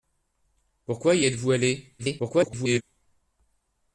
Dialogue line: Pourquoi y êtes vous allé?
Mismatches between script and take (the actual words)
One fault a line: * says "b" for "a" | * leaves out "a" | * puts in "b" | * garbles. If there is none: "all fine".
* garbles